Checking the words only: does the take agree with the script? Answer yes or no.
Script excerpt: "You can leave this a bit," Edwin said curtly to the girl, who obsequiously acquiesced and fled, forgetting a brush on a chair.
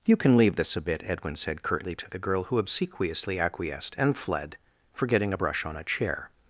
yes